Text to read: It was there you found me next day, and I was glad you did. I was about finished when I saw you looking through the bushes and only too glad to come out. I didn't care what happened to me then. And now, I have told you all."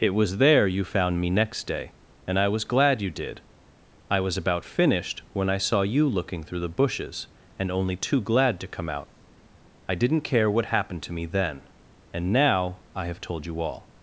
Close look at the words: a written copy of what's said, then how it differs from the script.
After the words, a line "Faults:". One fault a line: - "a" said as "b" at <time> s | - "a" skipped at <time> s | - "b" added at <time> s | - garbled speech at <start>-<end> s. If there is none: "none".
It was there you found me next day, and I was glad you did. I was about finished when I saw you looking through the bushes and only too glad to come out. I didn't care what happened to me then. And now, I have told you all."
Faults:
none